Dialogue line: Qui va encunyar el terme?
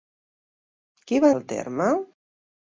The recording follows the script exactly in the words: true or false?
false